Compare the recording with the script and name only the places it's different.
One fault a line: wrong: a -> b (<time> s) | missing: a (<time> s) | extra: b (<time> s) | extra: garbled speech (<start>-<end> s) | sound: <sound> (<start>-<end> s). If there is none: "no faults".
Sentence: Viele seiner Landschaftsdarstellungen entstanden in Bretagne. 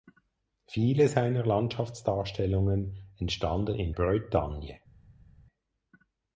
no faults